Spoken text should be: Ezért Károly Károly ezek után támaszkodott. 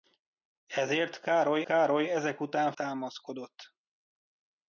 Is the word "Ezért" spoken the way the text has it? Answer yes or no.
yes